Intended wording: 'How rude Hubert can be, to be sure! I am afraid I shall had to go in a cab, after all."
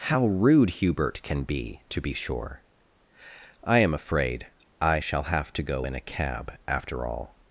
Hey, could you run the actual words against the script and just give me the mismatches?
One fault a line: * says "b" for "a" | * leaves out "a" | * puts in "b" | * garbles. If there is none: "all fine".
* says "have" for "had"